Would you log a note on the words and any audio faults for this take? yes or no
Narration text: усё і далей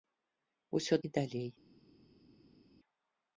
no